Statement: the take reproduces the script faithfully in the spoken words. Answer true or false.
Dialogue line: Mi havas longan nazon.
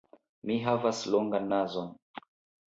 true